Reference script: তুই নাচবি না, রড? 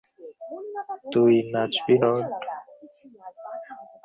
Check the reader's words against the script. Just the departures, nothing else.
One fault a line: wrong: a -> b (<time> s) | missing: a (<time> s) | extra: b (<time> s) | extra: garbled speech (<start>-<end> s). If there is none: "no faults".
missing: না (1.9 s)